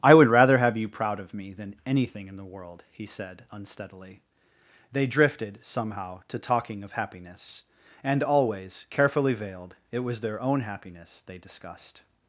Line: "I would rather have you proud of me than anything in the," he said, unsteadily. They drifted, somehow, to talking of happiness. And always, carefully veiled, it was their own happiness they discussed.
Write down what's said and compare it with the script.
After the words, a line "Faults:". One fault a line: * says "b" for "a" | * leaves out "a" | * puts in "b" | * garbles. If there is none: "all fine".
"I would rather have you proud of me than anything in the world," he said, unsteadily. They drifted, somehow, to talking of happiness. And always, carefully veiled, it was their own happiness they discussed.
Faults:
* puts in "world"